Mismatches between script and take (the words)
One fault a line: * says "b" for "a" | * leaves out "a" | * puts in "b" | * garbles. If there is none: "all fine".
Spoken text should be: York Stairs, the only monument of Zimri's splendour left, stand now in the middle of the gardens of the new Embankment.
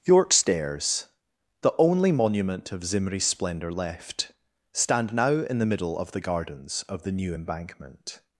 all fine